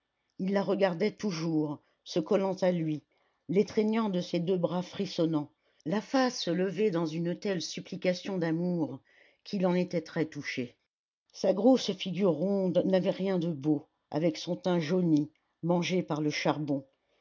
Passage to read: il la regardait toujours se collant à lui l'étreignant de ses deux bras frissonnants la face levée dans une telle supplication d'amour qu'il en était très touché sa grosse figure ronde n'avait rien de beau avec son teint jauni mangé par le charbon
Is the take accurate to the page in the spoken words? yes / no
yes